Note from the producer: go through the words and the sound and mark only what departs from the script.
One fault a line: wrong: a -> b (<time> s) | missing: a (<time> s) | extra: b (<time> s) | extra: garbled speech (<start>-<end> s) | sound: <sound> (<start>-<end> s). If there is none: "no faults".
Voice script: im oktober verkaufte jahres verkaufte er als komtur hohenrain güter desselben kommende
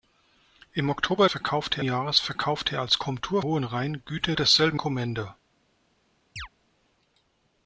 sound: chirp (6.4-6.5 s)